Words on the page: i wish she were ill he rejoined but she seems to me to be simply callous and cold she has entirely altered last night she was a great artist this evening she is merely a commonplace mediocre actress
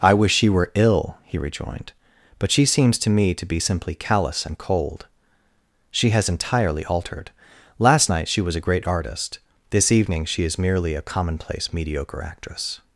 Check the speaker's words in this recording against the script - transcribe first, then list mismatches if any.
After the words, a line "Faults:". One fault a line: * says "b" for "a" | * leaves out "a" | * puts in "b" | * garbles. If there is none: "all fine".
i wish she were ill he rejoined but she seems to me to be simply callous and cold she has entirely altered last night she was a great artist this evening she is merely a commonplace mediocre actress
Faults:
all fine